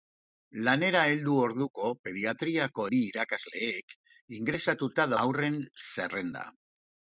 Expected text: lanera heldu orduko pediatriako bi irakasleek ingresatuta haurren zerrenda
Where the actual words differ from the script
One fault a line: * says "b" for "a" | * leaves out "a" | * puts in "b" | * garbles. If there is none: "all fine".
all fine